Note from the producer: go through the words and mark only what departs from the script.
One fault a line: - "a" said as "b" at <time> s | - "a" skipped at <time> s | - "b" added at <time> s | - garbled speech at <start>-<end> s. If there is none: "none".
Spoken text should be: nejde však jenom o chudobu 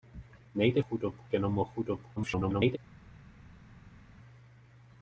- "však" said as "chudobu" at 0.8 s
- garbled speech at 2.2-2.8 s